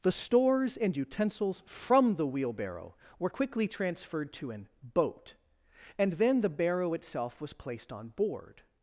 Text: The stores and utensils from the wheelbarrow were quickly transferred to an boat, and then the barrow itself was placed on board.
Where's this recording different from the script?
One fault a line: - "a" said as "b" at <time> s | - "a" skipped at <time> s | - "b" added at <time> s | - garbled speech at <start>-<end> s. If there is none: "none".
none